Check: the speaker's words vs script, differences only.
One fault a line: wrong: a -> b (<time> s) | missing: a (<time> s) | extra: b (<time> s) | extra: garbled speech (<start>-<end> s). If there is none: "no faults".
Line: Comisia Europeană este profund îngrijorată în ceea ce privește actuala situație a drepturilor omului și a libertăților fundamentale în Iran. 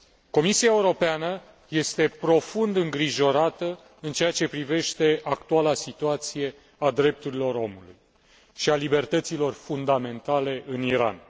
no faults